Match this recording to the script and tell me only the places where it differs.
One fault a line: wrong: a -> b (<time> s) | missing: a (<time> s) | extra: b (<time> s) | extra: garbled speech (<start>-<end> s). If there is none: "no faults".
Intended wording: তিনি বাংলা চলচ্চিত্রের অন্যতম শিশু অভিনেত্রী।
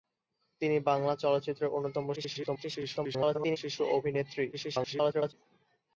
extra: garbled speech (2.2-3.6 s)
extra: garbled speech (4.5-5.3 s)